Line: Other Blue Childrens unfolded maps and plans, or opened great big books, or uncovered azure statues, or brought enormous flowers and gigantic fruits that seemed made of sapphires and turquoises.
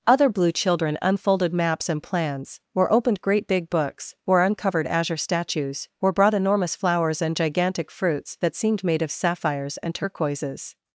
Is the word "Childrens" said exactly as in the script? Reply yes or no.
no